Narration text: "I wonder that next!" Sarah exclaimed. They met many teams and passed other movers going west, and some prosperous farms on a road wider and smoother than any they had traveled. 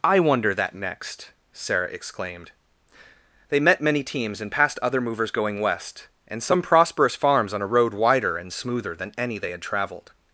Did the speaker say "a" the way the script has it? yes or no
yes